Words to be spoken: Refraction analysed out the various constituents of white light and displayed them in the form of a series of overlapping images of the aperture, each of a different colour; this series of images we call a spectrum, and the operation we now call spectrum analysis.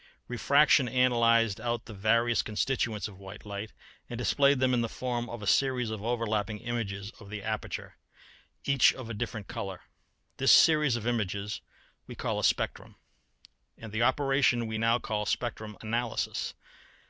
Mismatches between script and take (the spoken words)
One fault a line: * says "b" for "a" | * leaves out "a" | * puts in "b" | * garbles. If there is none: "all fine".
all fine